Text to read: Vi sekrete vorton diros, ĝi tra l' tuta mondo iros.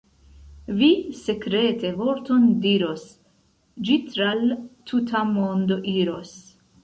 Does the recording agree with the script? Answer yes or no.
yes